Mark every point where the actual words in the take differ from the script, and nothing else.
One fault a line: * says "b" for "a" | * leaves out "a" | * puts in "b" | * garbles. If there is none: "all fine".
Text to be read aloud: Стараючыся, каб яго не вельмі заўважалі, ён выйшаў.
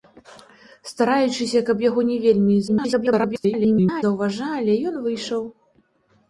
* garbles